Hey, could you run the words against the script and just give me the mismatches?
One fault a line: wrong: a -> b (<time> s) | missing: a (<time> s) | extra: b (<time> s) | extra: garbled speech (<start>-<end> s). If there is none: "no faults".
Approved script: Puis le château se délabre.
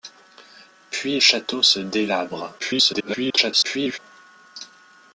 missing: le (1.2 s)
extra: garbled speech (2.6-4.0 s)